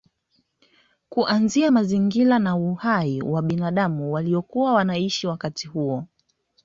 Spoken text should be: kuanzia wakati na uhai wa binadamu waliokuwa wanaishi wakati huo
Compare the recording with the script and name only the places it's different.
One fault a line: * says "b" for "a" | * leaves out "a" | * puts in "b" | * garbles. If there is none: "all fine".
* says "mazingira" for "wakati"